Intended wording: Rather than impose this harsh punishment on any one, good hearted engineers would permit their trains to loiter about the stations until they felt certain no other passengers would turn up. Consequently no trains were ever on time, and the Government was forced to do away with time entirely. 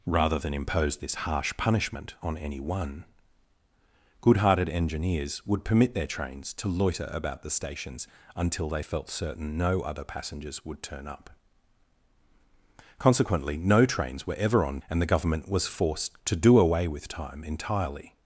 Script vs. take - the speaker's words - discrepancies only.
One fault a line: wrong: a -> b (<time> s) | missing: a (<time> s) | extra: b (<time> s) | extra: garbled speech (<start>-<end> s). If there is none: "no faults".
missing: time (14.8 s)